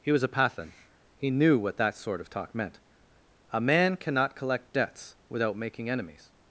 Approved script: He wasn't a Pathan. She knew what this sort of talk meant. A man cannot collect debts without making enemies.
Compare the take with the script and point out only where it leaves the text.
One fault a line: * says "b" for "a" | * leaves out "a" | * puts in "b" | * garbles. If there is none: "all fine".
* says "was" for "wasn't"
* says "He" for "She"
* says "that" for "this"